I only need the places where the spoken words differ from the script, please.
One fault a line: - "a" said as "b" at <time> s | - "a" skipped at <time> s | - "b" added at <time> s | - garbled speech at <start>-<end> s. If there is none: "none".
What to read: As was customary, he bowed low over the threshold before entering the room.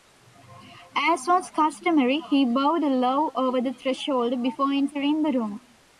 none